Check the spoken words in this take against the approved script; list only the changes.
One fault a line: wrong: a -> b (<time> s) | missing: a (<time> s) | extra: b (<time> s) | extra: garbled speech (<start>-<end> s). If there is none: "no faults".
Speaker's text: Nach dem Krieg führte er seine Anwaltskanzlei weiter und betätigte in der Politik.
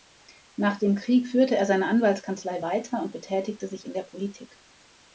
extra: sich (3.7 s)